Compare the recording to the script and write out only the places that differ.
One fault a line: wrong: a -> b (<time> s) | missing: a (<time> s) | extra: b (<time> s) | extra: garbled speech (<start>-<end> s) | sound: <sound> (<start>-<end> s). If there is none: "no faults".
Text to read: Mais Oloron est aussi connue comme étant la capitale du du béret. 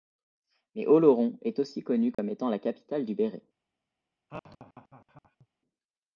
sound: dropout (2.1-2.2 s)
missing: du (3.2 s)
sound: laugh (4.3-5.5 s)